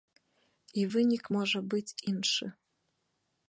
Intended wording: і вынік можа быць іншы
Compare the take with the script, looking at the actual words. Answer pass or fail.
pass